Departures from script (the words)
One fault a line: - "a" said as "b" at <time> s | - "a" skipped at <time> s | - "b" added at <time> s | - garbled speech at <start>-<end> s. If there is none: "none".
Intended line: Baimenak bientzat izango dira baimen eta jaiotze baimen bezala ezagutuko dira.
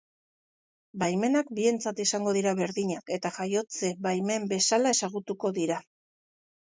- "baimen" said as "berdinak" at 2.6 s